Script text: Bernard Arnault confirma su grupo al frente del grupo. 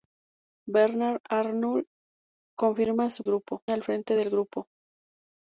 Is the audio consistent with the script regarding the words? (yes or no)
yes